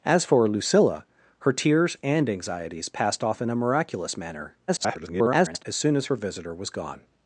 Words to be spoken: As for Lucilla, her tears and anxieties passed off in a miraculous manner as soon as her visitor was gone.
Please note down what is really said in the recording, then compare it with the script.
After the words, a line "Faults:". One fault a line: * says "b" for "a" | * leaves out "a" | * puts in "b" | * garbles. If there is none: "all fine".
As for Lucilla, her tears and anxieties passed off in a miraculous manner [garbled] as soon as her visitor was gone.
Faults:
* garbles